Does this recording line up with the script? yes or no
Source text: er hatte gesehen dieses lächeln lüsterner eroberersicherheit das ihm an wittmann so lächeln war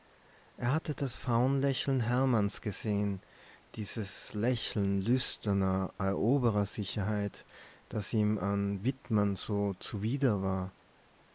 no